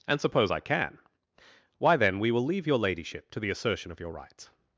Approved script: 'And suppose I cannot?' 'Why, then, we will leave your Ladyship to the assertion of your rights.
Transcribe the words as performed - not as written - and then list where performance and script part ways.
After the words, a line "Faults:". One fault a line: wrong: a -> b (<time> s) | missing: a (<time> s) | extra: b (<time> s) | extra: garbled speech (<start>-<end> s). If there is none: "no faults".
'And suppose I can?' 'Why, then, we will leave your Ladyship to the assertion of your rights.
Faults:
wrong: cannot -> can (0.6 s)